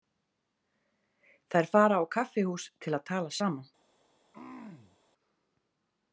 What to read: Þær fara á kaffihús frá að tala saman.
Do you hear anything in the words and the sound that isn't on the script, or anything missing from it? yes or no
yes